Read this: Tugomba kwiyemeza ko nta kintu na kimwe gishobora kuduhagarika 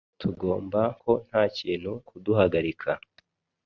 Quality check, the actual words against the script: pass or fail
fail